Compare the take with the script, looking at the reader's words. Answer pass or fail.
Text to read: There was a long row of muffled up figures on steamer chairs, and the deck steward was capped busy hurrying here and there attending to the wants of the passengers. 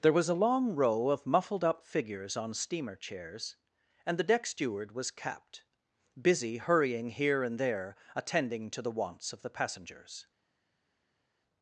pass